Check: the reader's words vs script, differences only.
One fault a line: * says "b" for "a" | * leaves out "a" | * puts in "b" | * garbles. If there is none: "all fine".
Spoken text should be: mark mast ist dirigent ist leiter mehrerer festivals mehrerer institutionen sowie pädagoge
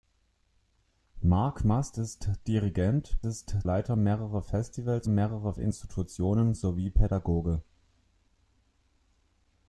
all fine